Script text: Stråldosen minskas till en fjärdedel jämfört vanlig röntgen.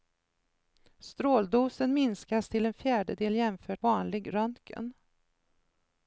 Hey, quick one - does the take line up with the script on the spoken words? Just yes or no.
yes